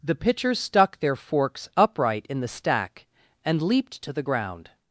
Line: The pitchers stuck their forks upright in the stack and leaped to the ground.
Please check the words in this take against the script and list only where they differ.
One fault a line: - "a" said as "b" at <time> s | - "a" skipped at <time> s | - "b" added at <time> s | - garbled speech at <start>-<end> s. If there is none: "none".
none